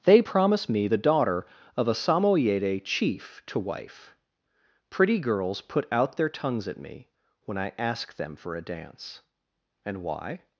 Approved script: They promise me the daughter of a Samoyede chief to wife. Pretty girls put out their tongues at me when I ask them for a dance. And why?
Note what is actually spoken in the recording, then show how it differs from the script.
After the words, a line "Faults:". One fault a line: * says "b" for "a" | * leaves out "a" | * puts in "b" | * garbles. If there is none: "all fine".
They promise me the daughter of a Samoyede chief to wife. Pretty girls put out their tongues at me when I ask them for a dance. And why?
Faults:
all fine